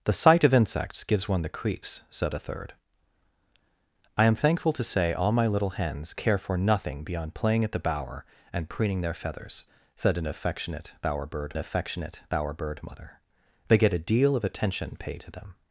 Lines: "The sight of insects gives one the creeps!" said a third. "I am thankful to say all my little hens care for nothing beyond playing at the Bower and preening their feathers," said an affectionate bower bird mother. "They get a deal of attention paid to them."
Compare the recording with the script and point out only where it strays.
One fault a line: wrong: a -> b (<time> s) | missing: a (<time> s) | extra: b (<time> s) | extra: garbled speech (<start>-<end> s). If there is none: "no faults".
extra: affectionate bower bird (11.6 s)